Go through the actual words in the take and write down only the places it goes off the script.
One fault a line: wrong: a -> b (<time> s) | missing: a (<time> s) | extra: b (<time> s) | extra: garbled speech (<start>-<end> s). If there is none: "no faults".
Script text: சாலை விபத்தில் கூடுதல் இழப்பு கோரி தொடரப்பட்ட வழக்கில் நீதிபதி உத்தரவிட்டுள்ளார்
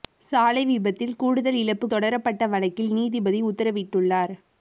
missing: கோரி (1.9 s)